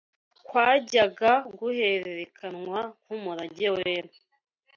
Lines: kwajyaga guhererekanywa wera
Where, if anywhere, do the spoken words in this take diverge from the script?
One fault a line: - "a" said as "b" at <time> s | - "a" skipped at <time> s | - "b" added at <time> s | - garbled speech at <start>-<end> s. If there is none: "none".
- "nk'umurage" added at 3.0 s